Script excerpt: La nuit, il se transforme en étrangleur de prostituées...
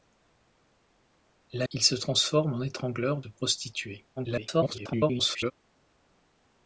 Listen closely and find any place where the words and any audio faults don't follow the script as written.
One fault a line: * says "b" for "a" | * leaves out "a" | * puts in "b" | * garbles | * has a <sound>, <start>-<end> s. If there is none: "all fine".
* leaves out "nuit"
* garbles